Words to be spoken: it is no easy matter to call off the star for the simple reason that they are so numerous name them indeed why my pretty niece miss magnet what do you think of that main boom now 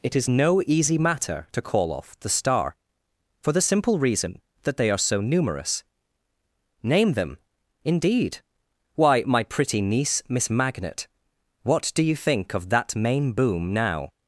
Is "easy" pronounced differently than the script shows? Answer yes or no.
no